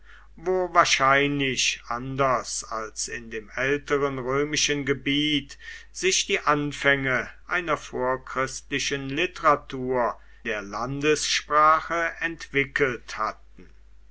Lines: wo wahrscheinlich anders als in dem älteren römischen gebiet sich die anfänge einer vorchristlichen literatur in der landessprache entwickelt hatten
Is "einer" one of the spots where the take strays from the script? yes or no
no